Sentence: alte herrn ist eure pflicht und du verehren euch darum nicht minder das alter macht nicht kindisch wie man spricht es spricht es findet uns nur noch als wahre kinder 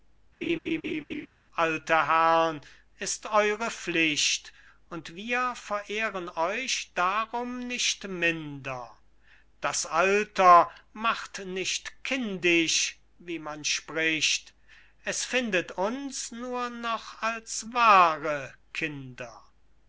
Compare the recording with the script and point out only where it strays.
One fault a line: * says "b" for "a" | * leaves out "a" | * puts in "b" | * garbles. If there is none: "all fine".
* says "wir" for "du"
* leaves out "spricht es"